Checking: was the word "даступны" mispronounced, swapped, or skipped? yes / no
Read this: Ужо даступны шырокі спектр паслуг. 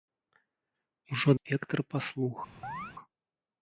yes